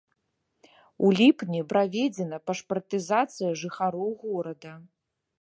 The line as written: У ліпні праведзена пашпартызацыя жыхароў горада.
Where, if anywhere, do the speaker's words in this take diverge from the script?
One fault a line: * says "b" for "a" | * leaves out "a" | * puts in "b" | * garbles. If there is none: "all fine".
all fine